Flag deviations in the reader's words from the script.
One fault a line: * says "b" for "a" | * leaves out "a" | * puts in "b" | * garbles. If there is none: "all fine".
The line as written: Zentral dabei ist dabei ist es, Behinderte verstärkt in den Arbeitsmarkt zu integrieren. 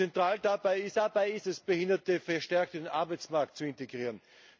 all fine